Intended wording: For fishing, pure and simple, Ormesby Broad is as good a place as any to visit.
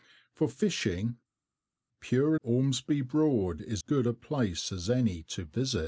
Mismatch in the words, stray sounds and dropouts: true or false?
true